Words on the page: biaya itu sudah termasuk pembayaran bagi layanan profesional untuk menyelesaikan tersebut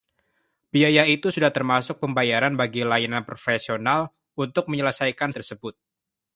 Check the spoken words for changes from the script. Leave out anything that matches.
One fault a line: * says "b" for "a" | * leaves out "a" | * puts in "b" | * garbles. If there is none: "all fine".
all fine